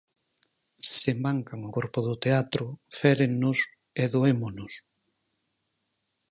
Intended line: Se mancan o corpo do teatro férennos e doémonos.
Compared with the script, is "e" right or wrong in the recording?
right